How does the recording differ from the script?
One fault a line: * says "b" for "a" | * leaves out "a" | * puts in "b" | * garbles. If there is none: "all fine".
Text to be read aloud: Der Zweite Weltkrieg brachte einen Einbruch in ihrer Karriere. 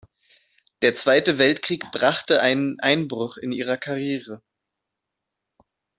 all fine